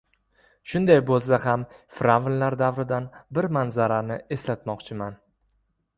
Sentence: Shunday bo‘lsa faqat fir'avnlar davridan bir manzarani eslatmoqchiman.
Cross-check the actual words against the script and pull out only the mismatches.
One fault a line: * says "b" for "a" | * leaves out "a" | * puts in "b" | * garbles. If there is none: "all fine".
* says "ham" for "faqat"